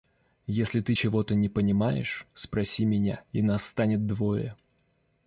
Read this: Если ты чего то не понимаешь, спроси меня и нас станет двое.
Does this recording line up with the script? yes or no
yes